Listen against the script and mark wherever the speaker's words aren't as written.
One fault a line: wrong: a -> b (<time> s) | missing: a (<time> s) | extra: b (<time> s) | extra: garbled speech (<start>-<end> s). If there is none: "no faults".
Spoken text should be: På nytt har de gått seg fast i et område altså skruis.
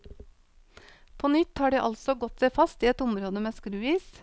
extra: altså (1.8 s)
wrong: altså -> med (3.4 s)